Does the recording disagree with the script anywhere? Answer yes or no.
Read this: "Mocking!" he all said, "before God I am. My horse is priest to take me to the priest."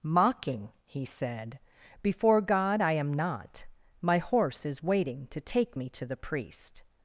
yes